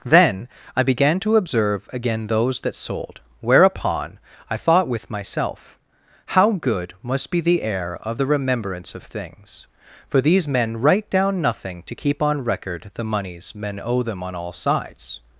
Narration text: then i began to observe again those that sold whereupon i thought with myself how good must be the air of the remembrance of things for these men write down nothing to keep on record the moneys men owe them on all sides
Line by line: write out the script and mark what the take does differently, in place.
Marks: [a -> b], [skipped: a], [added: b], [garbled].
then i began to observe again those that sold whereupon i thought with myself how good must be the air of the remembrance of things for these men write down nothing to keep on record the moneys men owe them on all sides